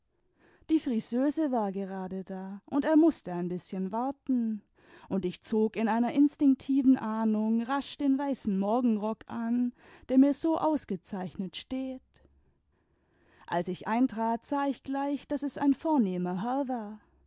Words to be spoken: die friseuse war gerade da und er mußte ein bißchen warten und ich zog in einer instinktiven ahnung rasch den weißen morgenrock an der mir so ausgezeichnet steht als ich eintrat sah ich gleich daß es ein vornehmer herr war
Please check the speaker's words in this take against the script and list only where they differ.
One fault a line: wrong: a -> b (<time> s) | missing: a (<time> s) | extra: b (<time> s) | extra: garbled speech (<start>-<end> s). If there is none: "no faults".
no faults